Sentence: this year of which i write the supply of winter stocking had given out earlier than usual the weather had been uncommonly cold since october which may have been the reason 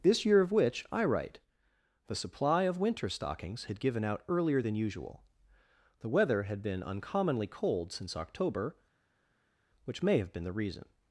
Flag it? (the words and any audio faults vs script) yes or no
yes